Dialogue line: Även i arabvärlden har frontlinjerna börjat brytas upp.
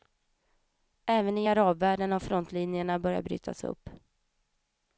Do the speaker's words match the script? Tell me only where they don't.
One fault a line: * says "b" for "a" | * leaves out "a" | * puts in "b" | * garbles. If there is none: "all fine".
all fine